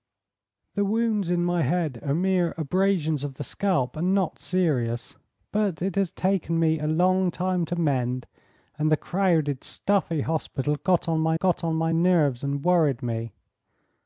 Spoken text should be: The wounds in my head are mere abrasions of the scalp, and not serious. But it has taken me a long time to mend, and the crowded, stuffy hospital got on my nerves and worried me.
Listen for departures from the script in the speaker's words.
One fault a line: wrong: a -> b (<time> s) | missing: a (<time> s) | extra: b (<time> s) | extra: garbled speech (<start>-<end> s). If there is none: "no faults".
extra: got on my (11.3 s)